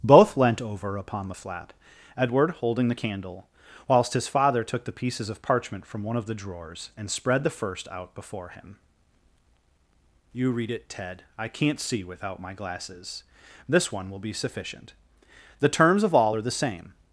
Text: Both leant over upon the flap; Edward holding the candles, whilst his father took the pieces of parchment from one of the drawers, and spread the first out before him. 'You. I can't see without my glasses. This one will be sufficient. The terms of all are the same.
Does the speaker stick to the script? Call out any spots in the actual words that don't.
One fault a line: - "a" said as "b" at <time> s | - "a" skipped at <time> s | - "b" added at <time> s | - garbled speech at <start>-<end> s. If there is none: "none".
- "candles" said as "candle" at 2.9 s
- "read it Ted" added at 10.5 s